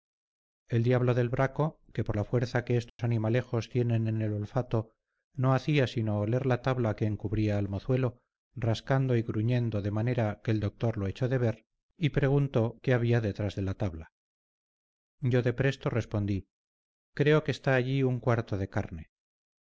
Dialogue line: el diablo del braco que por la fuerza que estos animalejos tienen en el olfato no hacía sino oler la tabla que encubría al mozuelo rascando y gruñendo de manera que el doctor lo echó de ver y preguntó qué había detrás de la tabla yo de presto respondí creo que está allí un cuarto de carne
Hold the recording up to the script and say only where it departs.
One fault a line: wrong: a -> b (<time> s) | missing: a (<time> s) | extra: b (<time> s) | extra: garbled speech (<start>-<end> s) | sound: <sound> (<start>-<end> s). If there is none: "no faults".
sound: dropout (2.9-3.0 s)